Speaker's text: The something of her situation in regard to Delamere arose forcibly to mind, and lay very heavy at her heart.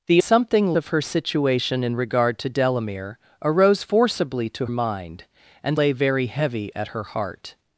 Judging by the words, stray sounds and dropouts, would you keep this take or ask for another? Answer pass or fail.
pass